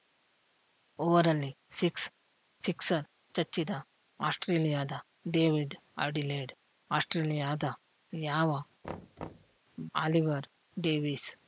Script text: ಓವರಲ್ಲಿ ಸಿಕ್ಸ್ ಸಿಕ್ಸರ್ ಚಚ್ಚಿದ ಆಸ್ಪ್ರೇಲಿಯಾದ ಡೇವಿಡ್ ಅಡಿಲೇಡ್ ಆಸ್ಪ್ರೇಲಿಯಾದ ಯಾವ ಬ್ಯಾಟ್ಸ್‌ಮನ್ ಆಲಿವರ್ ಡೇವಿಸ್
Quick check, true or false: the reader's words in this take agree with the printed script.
false